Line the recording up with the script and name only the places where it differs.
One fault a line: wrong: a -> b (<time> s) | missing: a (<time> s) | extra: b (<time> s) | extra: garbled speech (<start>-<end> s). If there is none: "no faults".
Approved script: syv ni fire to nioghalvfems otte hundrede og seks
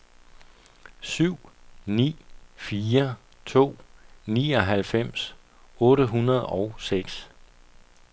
no faults